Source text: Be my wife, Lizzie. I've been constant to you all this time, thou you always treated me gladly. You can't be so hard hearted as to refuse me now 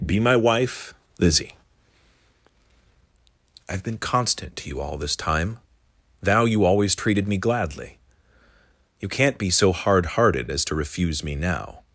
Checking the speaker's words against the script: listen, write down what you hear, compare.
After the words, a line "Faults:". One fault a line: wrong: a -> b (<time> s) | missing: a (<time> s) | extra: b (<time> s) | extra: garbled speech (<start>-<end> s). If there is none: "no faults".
Be my wife, Lizzie. I've been constant to you all this time, thou you always treated me gladly. You can't be so hard hearted as to refuse me now
Faults:
no faults